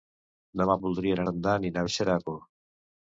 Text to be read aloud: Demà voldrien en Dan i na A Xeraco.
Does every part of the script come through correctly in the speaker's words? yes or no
yes